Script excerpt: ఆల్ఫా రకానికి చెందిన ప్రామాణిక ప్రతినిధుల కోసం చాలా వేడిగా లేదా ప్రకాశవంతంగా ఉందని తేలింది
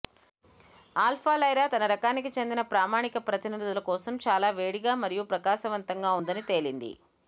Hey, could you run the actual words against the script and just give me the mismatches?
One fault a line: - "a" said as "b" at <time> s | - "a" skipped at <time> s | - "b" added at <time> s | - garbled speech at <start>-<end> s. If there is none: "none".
- "లైరా తన" added at 1.4 s
- "లేదా" said as "మరియు" at 5.0 s